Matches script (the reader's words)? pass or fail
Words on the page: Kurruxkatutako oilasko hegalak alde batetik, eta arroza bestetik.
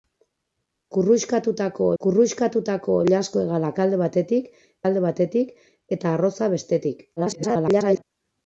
fail